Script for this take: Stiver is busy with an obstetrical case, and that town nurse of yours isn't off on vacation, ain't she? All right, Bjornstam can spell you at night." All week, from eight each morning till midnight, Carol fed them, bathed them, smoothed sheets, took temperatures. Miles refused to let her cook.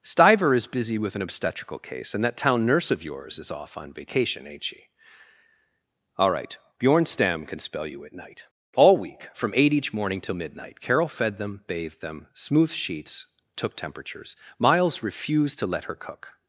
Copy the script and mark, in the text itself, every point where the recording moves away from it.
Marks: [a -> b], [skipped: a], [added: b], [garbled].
Stiver is busy with an obstetrical case, and that town nurse of yours [isn't -> is] off on vacation, ain't she? All right, Bjornstam can spell you at night." All week, from eight each morning till midnight, Carol fed them, bathed them, smoothed sheets, took temperatures. Miles refused to let her cook.